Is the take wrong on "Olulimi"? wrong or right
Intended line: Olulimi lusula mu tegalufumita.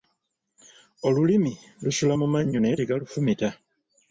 right